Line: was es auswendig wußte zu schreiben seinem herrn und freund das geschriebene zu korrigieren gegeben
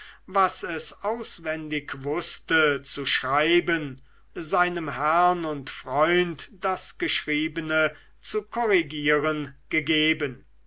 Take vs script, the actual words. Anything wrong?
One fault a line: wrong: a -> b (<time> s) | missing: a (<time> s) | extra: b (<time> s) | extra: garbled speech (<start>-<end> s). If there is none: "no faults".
no faults